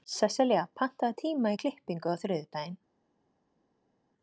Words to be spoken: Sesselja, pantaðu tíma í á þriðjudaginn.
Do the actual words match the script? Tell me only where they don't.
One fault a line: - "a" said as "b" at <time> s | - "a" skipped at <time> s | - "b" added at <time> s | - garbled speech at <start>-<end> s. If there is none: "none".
- "klippingu" added at 1.6 s